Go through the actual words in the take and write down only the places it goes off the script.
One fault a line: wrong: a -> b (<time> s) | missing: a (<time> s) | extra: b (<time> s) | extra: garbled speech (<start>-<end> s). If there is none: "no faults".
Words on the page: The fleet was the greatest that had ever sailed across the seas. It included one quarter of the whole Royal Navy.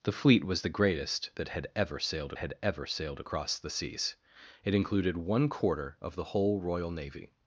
extra: had ever sailed (2.4 s)